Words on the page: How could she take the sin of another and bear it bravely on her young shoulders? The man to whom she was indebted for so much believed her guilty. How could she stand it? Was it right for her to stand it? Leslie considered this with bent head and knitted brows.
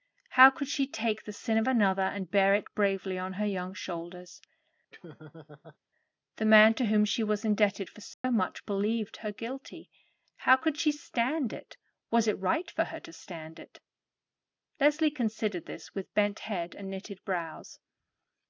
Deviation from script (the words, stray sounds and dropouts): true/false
true